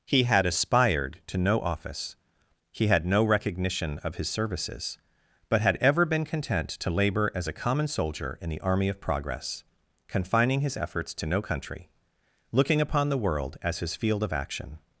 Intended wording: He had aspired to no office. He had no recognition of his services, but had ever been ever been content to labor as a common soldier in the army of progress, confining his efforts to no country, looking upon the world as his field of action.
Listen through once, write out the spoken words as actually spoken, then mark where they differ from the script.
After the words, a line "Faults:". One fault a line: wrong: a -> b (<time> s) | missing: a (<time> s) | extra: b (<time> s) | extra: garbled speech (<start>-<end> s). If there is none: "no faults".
He had aspired to no office. He had no recognition of his services, but had ever been content to labor as a common soldier in the army of progress, confining his efforts to no country, looking upon the world as his field of action.
Faults:
missing: ever been (6.2 s)